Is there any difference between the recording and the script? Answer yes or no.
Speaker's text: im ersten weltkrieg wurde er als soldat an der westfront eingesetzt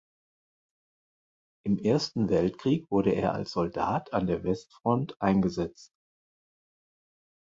no